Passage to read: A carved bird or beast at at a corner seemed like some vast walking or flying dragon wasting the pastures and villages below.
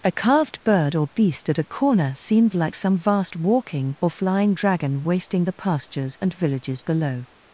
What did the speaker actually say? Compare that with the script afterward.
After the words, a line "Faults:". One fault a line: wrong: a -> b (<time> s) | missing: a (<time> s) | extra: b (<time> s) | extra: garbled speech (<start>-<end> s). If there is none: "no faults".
A carved bird or beast at a corner seemed like some vast walking or flying dragon wasting the pastures and villages below.
Faults:
missing: at (1.6 s)